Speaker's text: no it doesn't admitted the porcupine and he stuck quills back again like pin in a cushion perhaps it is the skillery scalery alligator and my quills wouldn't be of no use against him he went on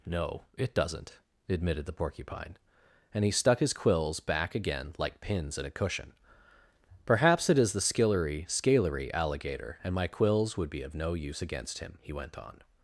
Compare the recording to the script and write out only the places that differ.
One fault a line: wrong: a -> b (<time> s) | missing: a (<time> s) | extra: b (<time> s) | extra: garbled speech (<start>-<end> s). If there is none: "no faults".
extra: his (3.6 s)
wrong: pin -> pins (5.2 s)
wrong: wouldn't -> would (10.6 s)